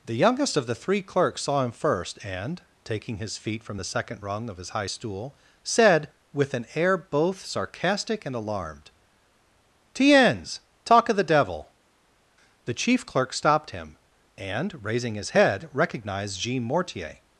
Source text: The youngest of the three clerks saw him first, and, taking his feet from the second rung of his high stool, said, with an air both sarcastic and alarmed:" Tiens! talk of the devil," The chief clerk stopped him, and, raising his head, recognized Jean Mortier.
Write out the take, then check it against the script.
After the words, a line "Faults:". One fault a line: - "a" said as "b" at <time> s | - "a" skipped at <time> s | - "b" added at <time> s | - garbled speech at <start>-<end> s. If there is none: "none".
The youngest of the three clerks saw him first, and, taking his feet from the second rung of his high stool, said, with an air both sarcastic and alarmed:" Tiens! talk of the devil," The chief clerk stopped him, and, raising his head, recognized Jean Mortier.
Faults:
none